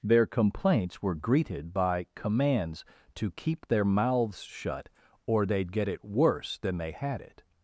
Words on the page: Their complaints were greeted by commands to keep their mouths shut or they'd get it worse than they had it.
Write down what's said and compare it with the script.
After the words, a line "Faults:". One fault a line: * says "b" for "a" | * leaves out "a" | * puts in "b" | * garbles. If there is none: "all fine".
Their complaints were greeted by commands to keep their mouths shut or they'd get it worse than they had it.
Faults:
all fine